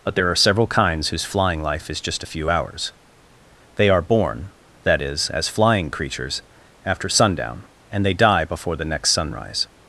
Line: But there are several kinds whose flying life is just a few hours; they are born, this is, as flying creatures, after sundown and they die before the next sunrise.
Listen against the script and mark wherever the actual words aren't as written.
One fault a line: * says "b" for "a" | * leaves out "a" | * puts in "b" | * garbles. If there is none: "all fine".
* says "that" for "this"